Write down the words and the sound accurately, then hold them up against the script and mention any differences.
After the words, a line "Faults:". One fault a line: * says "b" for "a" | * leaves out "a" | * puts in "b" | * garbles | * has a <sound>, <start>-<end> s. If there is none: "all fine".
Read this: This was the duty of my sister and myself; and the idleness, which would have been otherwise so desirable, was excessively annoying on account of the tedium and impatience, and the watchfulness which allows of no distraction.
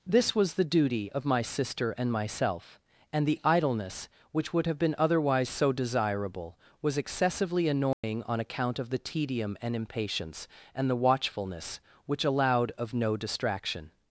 This was the duty of my sister and myself; and the idleness, which would have been otherwise so desirable, was excessively annoying on account of the tedium and impatience, and the watchfulness which allowed of no distraction.
Faults:
* has a dropout, 7.9-8.0 s
* says "allowed" for "allows"